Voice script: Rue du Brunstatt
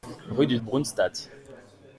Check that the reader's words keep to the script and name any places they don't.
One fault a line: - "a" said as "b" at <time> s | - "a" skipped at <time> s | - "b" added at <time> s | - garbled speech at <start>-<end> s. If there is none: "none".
none